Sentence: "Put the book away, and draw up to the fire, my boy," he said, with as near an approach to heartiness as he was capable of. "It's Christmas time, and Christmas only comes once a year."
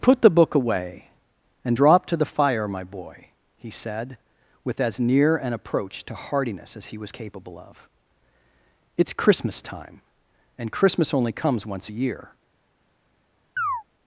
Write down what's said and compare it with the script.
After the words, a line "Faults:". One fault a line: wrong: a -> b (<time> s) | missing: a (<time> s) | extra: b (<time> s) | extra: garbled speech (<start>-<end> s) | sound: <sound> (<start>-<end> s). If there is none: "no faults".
"Put the book away, and drop to the fire, my boy," he said, with as near an approach to heartiness as he was capable of. "It's Christmas time, and Christmas only comes once a year."
Faults:
wrong: draw up -> drop (1.7 s)
sound: chirp (13.6-13.8 s)